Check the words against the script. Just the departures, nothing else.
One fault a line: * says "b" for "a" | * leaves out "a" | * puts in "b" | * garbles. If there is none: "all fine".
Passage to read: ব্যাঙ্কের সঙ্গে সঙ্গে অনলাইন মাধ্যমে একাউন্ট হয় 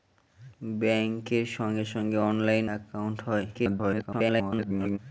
* leaves out "মাধ্যমে"
* garbles